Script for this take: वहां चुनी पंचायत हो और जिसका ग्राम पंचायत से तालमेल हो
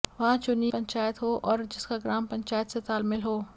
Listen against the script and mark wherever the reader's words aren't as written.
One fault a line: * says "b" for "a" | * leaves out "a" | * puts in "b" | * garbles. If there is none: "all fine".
all fine